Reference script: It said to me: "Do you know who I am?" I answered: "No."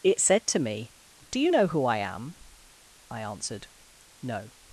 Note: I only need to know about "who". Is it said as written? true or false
true